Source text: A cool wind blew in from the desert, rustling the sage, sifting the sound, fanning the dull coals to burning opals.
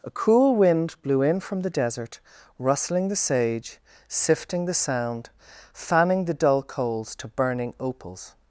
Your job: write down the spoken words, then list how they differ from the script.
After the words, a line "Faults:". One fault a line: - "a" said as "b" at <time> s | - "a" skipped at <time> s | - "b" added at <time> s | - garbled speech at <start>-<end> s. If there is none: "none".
A cool wind blew in from the desert, rustling the sage, sifting the sound, fanning the dull coals to burning opals.
Faults:
none